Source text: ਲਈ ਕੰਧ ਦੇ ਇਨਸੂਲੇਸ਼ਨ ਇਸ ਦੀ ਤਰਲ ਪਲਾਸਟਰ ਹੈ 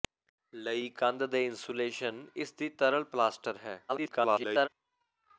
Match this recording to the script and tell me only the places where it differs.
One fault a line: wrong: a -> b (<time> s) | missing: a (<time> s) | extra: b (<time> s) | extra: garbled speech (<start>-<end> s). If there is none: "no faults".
extra: garbled speech (3.9-4.7 s)